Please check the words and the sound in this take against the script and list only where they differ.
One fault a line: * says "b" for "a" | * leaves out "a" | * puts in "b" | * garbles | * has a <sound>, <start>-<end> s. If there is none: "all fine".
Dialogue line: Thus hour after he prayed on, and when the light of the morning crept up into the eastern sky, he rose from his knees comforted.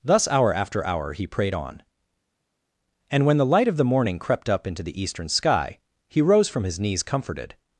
* puts in "hour"